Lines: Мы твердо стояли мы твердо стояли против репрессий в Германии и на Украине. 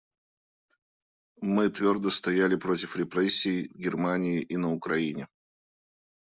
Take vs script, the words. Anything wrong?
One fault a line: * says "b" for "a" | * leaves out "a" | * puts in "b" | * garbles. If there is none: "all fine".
* leaves out "мы твердо стояли"